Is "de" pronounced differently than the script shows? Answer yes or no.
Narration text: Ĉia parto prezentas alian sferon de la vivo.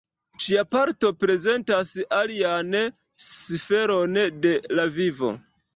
no